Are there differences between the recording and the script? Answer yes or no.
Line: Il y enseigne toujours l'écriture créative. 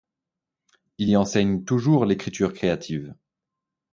no